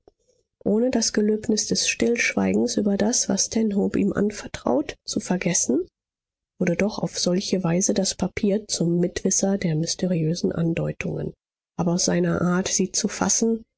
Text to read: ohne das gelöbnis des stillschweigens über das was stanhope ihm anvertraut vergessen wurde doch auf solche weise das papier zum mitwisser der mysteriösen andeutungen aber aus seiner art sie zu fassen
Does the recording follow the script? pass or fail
fail